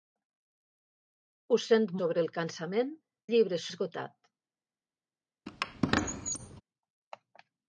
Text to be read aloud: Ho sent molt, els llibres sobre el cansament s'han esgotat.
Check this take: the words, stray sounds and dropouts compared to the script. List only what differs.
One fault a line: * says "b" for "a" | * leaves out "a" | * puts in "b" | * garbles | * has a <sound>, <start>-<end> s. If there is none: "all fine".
* leaves out "molt els llibres"
* says "llibres" for "s'han"
* has a squeak, 5.5-6.6 s